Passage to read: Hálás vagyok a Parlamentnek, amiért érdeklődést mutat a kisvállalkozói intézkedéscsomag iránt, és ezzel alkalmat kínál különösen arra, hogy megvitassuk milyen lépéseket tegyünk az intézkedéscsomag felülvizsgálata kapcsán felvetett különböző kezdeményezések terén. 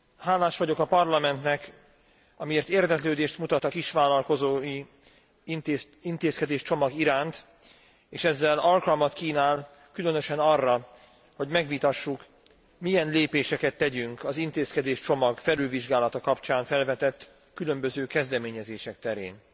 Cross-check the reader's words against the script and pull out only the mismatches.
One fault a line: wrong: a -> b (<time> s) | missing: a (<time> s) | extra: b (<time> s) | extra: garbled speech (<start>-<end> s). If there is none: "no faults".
no faults